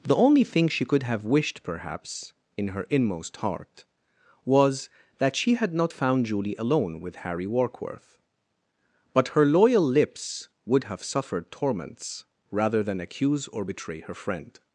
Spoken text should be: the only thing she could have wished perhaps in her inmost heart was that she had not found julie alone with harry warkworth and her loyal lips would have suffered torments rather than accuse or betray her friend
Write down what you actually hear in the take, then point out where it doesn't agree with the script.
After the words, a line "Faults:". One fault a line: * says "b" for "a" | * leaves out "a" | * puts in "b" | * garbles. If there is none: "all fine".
the only thing she could have wished perhaps in her inmost heart was that she had not found julie alone with harry warkworth but her loyal lips would have suffered torments rather than accuse or betray her friend
Faults:
* says "but" for "and"